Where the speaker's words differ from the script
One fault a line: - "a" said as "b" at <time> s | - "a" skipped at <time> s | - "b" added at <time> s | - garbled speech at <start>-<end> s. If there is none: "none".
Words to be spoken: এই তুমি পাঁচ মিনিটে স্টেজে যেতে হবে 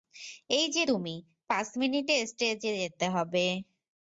- "যে" added at 0.7 s